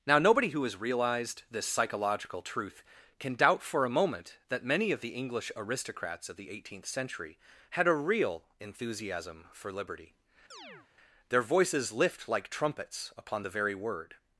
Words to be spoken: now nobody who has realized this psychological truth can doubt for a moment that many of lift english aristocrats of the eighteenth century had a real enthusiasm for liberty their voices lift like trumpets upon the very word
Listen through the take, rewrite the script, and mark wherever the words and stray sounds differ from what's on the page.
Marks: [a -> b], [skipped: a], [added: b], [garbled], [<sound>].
now nobody who has realized this psychological truth can doubt for a moment that many of [lift -> the] english aristocrats of the eighteenth century had a real enthusiasm for liberty [chirp] their voices lift like trumpets upon the very word